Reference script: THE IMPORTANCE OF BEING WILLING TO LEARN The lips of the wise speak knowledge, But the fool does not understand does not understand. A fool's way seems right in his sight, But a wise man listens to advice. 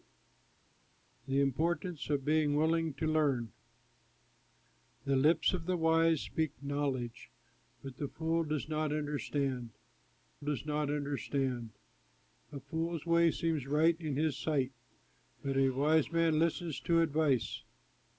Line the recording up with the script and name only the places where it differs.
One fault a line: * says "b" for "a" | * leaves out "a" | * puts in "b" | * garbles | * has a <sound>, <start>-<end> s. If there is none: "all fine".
all fine